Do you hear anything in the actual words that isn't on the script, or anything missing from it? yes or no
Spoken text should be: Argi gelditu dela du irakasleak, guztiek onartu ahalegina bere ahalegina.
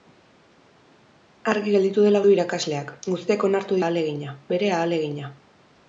no